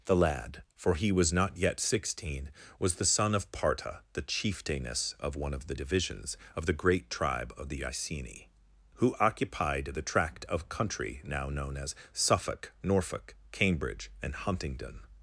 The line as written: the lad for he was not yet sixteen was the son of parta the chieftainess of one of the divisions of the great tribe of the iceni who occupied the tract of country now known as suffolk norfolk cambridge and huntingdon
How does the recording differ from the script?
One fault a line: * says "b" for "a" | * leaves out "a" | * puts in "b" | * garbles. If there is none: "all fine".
all fine